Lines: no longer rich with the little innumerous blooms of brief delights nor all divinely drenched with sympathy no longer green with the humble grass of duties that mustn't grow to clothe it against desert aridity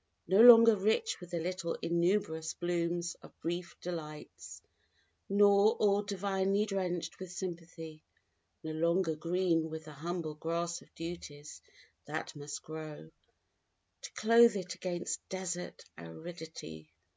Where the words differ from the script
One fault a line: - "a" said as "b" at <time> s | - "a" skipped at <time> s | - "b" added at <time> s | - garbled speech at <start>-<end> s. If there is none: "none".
- "mustn't" said as "must" at 12.4 s